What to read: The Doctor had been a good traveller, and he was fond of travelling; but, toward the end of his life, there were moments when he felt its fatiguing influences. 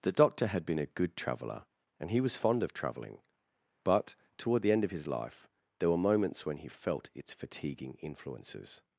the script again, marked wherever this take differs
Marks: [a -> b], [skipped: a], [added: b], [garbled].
The Doctor had been a good traveller, and he was fond of travelling; but, toward the end of his life, there were moments when he felt its fatiguing influences.